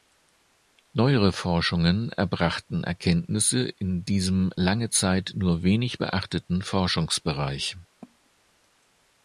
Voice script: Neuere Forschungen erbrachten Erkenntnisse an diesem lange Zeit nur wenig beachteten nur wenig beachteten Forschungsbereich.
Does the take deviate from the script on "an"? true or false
true